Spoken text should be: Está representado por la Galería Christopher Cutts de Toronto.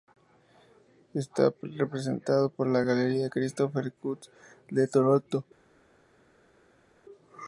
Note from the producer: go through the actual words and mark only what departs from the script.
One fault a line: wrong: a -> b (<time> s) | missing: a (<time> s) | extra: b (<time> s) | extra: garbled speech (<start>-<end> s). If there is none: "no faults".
no faults